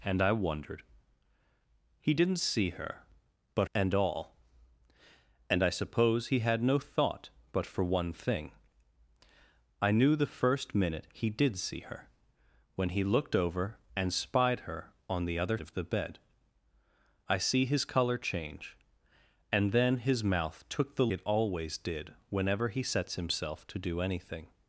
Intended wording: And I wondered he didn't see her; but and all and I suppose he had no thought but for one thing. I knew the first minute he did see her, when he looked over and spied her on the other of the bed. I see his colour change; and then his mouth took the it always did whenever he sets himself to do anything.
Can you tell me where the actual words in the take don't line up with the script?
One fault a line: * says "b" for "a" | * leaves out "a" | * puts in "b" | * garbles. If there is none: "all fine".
all fine